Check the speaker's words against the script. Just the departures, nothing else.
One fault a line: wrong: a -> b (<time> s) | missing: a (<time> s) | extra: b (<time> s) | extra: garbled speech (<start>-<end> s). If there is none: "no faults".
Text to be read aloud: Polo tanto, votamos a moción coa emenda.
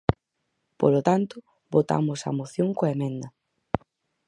no faults